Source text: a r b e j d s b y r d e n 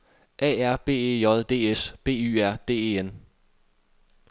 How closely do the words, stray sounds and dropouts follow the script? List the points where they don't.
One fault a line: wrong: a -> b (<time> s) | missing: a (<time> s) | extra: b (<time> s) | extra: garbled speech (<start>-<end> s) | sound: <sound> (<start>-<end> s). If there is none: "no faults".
no faults